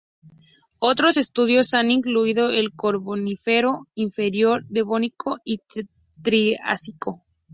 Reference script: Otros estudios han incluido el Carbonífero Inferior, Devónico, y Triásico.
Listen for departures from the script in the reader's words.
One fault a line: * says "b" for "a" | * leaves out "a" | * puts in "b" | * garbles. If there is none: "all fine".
all fine